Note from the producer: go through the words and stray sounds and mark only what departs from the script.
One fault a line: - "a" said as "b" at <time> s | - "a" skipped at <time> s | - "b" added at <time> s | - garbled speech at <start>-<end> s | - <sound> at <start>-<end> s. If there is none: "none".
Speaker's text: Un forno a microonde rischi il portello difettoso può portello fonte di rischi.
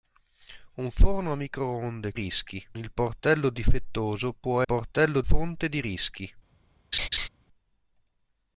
- laugh at 6.9-7.3 s